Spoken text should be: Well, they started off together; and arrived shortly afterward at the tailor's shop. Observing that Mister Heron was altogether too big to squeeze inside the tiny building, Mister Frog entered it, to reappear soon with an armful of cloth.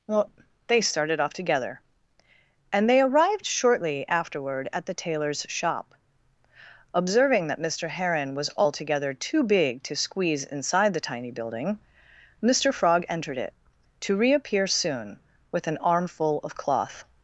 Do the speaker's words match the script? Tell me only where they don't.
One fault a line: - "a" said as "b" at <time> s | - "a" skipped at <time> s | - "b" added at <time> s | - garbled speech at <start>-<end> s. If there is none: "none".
- "they" added at 2.9 s